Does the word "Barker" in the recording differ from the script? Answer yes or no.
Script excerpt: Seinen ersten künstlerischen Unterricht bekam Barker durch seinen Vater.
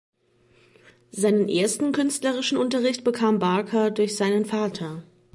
no